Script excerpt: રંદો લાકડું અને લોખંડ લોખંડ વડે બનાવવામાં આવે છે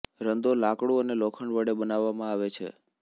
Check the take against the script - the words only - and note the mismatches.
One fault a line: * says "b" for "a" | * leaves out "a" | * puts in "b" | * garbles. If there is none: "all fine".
* leaves out "લોખંડ"